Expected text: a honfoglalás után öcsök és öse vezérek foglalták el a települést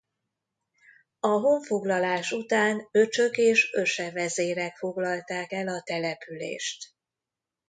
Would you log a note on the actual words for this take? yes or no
no